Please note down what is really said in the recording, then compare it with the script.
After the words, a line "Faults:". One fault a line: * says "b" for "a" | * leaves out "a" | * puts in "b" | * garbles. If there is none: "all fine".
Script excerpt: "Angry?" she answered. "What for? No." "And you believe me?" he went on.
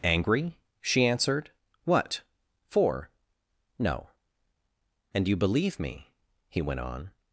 "Angry?" she answered. "What for? No." "And you believe me?" he went on.
Faults:
all fine